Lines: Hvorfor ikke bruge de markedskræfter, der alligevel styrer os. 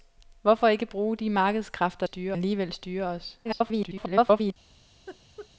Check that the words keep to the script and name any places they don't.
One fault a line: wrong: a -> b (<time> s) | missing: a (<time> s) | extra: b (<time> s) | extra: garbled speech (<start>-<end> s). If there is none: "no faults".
wrong: der -> styrer (2.0 s)
extra: garbled speech (3.4-4.5 s)